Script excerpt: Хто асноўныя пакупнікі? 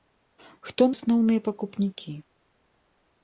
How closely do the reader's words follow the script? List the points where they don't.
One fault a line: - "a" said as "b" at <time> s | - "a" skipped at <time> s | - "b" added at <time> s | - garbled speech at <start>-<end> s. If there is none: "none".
none